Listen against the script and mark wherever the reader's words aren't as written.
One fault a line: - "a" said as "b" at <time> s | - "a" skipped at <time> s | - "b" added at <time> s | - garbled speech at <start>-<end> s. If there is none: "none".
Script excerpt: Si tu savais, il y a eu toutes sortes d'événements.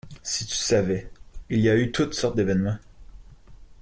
none